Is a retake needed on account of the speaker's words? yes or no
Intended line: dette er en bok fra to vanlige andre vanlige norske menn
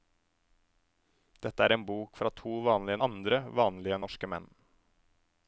no